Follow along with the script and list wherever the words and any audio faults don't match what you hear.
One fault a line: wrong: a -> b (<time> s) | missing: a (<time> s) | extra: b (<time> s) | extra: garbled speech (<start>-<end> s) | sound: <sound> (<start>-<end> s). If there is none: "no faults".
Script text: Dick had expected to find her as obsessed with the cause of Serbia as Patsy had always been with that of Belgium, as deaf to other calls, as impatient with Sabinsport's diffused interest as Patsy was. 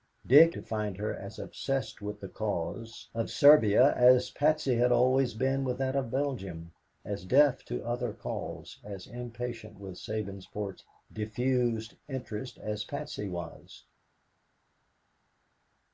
missing: had expected (0.6 s)